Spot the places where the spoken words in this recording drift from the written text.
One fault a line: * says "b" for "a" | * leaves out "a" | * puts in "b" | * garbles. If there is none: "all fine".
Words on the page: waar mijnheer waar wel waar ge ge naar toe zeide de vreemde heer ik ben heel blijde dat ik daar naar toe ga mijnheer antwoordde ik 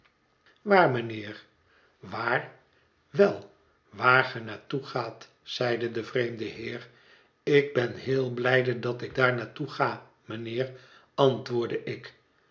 * leaves out "ge"
* puts in "gaat"